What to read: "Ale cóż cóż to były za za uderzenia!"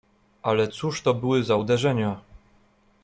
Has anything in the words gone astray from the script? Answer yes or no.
yes